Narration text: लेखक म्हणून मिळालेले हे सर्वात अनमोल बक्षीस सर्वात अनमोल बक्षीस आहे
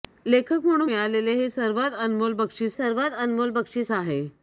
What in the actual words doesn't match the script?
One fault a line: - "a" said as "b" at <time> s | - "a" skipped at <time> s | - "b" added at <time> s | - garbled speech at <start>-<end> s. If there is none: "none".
none